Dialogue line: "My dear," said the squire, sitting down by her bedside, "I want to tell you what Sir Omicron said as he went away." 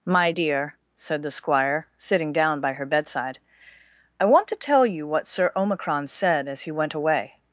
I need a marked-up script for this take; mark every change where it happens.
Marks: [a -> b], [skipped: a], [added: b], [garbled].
"My dear," said the squire, sitting down by her bedside, "I want to tell you what Sir Omicron said as he went away."